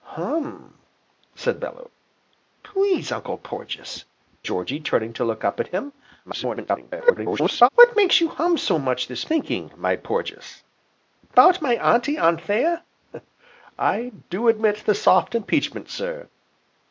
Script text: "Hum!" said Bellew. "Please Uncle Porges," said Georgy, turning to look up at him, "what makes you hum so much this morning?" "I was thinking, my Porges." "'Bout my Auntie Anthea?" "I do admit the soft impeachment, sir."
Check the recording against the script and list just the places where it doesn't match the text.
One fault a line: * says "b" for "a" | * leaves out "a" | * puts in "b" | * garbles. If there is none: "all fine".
* leaves out "said"
* garbles
* leaves out "morning I was"